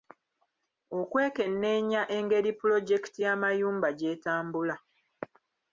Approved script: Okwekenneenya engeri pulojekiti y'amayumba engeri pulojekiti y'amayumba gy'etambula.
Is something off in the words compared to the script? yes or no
yes